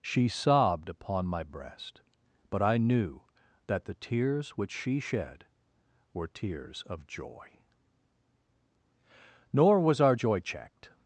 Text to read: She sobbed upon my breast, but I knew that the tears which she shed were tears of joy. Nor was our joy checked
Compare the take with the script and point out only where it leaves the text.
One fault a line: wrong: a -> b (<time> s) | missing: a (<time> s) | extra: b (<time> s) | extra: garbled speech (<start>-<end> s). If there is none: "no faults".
no faults